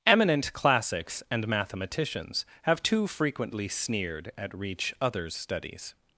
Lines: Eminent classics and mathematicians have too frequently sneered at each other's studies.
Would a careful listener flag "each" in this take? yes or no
yes